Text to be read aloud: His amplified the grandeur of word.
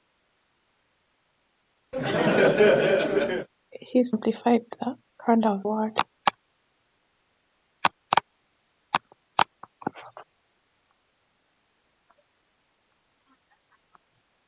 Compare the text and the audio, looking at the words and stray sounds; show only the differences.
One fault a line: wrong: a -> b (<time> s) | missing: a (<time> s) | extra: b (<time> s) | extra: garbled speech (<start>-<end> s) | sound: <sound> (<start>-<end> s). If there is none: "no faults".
sound: laugh (1.9-3.5 s)